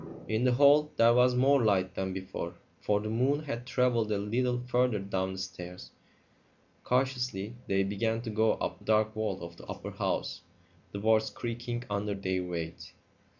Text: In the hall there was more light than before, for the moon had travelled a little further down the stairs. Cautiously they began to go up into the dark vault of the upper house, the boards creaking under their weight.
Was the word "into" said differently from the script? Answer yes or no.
yes